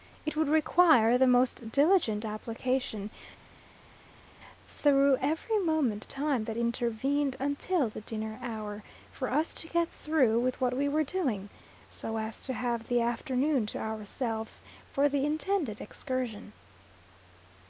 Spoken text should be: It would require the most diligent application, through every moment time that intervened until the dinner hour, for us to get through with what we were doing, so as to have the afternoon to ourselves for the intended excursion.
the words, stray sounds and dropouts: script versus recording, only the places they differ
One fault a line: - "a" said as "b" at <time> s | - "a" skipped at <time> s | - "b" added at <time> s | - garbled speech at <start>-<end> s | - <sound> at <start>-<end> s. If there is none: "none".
none